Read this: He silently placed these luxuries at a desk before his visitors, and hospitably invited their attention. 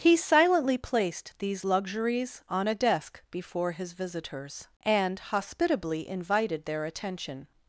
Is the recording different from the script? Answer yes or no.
yes